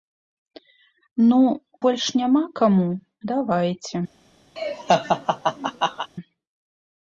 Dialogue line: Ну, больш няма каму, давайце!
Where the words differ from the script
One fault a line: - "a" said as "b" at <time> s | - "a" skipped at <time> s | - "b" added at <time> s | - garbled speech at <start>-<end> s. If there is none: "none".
none